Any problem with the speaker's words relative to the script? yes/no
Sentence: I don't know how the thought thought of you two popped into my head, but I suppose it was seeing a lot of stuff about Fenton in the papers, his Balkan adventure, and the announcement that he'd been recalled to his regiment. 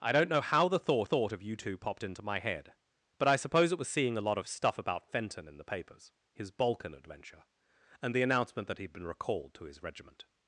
no